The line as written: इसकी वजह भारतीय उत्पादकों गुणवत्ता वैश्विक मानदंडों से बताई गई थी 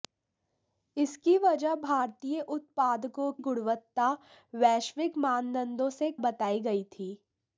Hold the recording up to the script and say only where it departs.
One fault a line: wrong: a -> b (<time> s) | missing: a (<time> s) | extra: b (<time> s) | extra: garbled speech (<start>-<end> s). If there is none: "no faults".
no faults